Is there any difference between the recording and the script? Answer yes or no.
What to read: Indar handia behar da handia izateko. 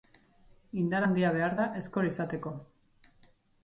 yes